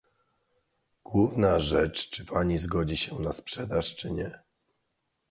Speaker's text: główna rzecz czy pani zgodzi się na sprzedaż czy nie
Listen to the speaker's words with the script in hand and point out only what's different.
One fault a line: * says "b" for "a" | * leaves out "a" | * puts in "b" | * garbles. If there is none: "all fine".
all fine